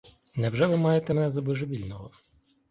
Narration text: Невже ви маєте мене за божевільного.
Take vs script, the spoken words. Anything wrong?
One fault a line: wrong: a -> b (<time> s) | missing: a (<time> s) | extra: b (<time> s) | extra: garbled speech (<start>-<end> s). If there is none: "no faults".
no faults